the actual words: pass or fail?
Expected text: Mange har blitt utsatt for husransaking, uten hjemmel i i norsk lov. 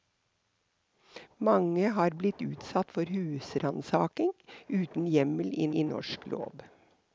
pass